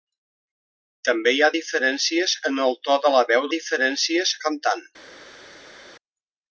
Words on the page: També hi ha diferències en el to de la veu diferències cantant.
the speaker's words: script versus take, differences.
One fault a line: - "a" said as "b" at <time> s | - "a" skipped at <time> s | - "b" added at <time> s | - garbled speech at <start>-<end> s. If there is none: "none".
none